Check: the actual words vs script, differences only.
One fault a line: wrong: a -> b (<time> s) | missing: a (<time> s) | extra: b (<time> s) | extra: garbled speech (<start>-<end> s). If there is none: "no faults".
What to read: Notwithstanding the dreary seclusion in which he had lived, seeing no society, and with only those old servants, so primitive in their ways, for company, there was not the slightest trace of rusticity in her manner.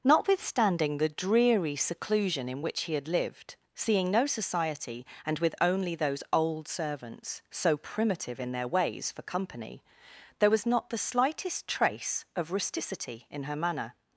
no faults